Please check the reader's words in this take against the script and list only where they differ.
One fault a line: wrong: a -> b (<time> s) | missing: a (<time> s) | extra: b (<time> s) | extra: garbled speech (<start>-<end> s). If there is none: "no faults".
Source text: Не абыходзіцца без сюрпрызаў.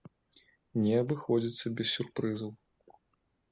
no faults